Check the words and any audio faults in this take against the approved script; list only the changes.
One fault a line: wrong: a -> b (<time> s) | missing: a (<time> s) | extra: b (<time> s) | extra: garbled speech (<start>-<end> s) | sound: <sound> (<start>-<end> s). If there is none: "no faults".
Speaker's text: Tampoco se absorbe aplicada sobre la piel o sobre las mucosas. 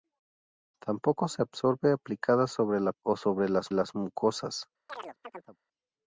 missing: piel (2.9 s)
extra: las (3.7 s)
sound: chirp (4.9-5.6 s)